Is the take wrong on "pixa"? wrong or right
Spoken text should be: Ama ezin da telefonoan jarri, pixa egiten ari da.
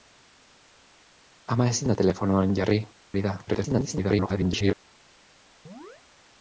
wrong